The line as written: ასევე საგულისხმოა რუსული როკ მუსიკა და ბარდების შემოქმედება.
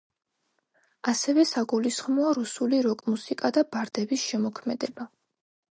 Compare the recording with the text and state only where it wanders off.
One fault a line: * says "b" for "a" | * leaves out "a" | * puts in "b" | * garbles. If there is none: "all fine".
all fine